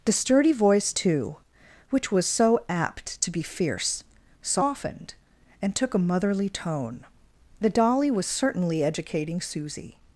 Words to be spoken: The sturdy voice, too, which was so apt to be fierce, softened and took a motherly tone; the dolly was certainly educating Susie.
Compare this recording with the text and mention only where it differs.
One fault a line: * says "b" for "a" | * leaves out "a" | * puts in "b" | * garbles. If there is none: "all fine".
all fine